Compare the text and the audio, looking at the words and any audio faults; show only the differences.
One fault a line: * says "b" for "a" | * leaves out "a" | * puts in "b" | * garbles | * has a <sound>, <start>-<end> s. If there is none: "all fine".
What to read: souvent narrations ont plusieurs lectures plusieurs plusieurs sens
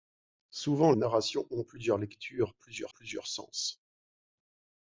all fine